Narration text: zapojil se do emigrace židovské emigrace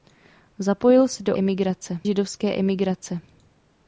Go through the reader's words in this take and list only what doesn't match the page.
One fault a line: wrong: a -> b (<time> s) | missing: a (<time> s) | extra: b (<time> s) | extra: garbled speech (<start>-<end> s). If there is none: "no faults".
no faults